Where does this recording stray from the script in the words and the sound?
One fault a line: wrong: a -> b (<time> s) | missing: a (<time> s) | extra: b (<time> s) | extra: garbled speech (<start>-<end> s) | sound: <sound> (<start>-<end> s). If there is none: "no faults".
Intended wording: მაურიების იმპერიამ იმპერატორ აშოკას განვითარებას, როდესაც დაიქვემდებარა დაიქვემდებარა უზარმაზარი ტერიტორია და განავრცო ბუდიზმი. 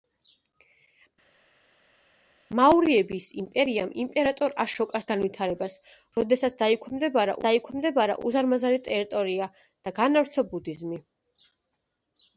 no faults